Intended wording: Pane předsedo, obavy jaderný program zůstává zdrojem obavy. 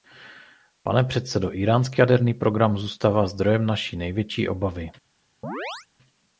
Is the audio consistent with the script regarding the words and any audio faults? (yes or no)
no